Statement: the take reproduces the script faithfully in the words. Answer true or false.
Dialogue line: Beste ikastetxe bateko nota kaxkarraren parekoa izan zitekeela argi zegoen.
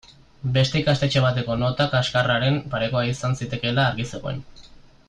true